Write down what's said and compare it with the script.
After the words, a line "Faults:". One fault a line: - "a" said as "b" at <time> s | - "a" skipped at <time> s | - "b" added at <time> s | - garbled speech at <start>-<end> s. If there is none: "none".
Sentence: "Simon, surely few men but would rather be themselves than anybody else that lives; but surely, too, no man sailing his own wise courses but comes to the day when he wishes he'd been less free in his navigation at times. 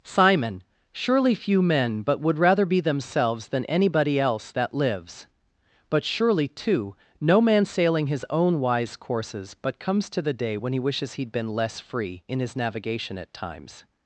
"Simon, surely few men but would rather be themselves than anybody else that lives; but surely, too, no man sailing his own wise courses but comes to the day when he wishes he'd been less free in his navigation at times.
Faults:
none